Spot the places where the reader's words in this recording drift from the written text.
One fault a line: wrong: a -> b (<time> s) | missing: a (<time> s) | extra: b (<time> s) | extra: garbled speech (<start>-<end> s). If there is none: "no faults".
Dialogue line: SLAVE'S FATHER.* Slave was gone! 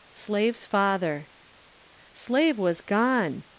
no faults